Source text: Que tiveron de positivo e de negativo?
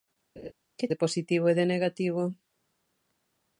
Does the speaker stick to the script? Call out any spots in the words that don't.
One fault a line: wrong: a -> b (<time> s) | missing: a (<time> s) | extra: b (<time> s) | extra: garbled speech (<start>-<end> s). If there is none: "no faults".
missing: tiveron (0.9 s)